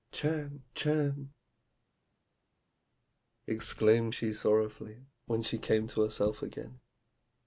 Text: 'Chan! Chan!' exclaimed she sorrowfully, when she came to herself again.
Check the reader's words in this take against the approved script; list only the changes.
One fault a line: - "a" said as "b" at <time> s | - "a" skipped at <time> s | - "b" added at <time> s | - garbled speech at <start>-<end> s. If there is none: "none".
none